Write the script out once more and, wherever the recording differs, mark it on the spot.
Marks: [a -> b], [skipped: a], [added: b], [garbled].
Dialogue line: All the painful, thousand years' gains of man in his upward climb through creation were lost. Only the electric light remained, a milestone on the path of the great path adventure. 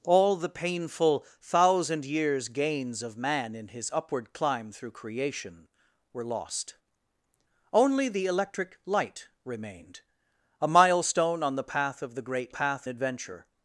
All the painful, thousand years' gains of man in his upward climb through creation were lost. Only the electric light remained, a milestone on the path of the great path adventure.